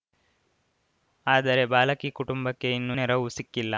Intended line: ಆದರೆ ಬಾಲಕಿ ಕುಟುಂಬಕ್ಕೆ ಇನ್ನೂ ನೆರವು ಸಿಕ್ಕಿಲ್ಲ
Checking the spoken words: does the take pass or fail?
pass